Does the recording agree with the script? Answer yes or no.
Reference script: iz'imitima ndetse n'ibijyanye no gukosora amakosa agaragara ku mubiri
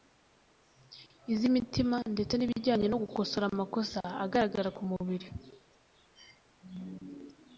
yes